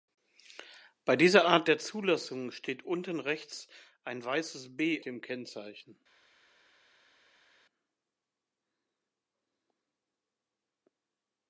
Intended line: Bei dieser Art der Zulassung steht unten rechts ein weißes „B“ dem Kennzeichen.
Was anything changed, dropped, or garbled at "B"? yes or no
no